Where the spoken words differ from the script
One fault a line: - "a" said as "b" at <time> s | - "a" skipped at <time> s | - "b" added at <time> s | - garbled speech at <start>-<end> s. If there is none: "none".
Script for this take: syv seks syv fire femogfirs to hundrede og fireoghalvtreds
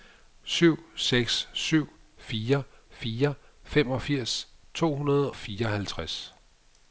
- "fire" added at 2.9 s
- "og" skipped at 5.3 s